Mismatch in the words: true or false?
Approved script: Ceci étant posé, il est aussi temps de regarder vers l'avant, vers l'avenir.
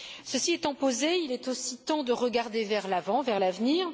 false